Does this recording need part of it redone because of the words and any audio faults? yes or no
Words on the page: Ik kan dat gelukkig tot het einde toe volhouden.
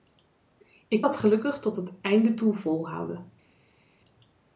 yes